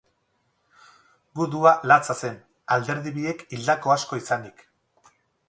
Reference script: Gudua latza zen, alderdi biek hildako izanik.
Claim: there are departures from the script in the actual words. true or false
true